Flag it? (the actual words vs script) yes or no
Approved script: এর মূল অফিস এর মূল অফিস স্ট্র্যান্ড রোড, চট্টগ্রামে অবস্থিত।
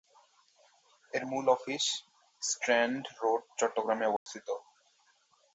yes